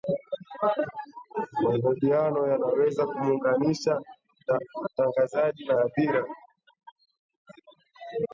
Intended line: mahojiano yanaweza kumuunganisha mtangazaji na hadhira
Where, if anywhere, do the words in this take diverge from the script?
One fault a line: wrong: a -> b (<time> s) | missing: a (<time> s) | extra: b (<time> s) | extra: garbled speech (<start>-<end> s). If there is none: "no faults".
no faults